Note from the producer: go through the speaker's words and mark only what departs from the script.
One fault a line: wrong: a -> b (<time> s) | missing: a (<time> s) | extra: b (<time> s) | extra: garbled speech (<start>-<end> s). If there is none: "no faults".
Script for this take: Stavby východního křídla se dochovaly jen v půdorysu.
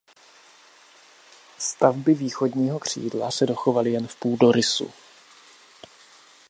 no faults